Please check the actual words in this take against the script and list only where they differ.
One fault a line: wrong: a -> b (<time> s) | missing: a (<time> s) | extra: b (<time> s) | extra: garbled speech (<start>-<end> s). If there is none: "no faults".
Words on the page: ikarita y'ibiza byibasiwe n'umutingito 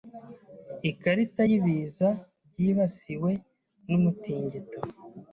no faults